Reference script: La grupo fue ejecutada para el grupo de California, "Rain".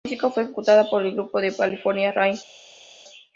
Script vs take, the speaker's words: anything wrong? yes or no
yes